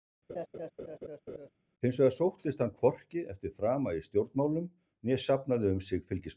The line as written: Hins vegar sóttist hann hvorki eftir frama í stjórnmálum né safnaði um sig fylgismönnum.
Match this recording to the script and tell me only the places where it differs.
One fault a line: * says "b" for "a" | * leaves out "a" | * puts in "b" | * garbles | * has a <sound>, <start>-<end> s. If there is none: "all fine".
* has a laugh, 0.3-1.5 s